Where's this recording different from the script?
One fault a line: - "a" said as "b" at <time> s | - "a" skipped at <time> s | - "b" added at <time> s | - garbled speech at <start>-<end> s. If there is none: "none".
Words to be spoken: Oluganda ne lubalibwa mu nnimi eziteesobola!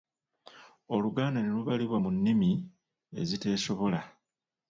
none